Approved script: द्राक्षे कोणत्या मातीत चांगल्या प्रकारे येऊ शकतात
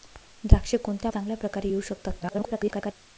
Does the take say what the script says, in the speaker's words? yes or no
no